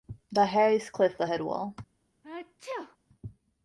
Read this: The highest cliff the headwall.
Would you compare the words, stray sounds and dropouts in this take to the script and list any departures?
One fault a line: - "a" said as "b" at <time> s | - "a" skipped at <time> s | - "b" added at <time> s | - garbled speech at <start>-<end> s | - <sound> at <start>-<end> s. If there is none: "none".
- sneeze at 2.2-3.0 s